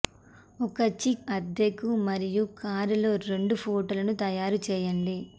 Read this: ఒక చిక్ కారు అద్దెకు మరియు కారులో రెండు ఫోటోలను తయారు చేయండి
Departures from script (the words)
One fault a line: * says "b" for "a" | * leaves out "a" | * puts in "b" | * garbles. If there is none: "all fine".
* leaves out "కారు"